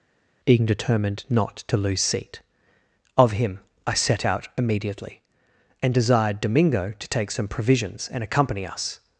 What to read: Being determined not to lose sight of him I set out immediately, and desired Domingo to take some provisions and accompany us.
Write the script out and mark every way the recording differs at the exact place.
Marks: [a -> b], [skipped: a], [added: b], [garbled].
Being determined not to lose [sight -> seat] of him I set out immediately, and desired Domingo to take some provisions and accompany us.